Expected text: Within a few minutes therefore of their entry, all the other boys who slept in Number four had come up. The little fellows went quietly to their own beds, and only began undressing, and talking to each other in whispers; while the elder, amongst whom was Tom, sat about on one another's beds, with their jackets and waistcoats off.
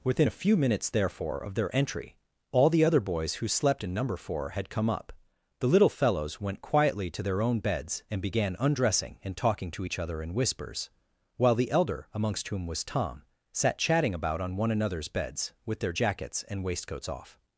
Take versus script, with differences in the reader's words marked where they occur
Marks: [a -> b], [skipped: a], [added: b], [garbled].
Within a few minutes therefore of their entry, all the other boys who slept in Number four had come up. The little fellows went quietly to their own beds, and [skipped: only] began undressing, and talking to each other in whispers; while the elder, amongst whom was Tom, sat [added: chatting] about on one another's beds, with their jackets and waistcoats off.